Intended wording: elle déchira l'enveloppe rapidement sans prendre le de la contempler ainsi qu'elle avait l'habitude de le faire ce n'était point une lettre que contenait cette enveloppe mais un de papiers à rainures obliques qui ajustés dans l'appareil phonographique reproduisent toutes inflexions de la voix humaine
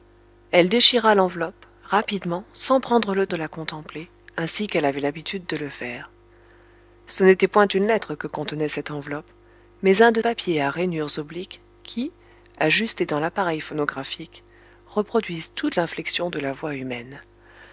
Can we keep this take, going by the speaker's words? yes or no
yes